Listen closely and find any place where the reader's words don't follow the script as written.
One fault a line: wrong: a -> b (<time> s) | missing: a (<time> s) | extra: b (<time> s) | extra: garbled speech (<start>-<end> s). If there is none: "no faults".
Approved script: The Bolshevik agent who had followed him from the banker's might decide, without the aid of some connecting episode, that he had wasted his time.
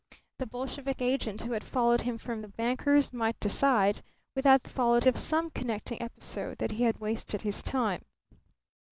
wrong: aid -> followed (4.7 s)